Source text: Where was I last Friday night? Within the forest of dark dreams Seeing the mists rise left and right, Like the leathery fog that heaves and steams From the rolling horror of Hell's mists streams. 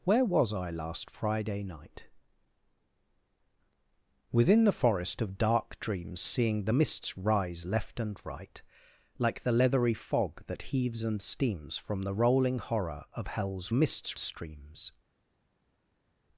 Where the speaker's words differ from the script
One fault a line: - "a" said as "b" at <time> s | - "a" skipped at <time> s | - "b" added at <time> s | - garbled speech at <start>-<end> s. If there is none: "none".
none